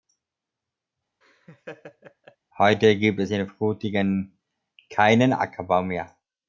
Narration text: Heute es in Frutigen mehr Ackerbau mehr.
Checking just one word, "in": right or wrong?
right